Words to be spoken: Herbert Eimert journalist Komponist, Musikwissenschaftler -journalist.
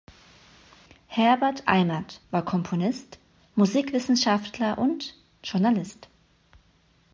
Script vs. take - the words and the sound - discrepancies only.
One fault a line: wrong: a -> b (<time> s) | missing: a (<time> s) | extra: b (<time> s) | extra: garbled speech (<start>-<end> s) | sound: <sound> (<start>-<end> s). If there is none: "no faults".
wrong: journalist -> war (2.3 s)
extra: und (4.8 s)